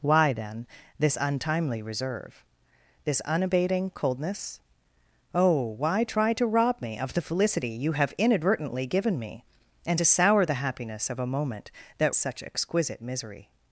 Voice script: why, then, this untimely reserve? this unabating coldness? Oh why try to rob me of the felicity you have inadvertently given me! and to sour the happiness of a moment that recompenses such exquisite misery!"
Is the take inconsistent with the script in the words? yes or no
yes